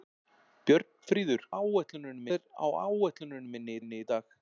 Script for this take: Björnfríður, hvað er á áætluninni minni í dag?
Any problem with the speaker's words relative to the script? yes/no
yes